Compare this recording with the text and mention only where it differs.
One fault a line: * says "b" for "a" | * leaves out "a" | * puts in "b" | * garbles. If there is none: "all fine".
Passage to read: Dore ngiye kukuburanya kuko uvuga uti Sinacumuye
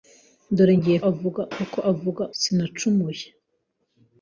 * says "uvuga" for "kukuburanya"
* leaves out "uti"